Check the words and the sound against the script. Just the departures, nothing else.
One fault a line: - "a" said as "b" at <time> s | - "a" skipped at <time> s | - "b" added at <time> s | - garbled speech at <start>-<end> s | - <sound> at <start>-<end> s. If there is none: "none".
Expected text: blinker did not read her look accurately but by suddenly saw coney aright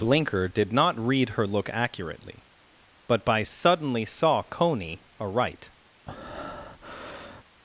- breath at 6.1-7.4 s